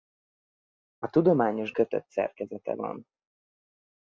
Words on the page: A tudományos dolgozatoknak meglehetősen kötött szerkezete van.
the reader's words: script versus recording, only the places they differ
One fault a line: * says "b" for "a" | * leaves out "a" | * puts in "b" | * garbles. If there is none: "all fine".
* leaves out "dolgozatoknak meglehetősen"